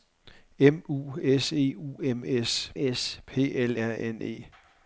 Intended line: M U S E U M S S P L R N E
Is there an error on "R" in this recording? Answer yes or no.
no